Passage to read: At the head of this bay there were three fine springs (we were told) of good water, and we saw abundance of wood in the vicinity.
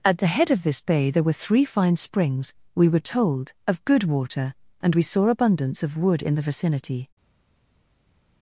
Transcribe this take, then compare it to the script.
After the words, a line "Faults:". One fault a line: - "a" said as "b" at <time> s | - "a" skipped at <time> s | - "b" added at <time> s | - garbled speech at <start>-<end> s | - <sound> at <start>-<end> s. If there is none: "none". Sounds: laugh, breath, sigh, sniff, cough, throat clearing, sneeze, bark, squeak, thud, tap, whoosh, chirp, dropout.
At the head of this bay there were three fine springs (we were told) of good water, and we saw abundance of wood in the vicinity.
Faults:
none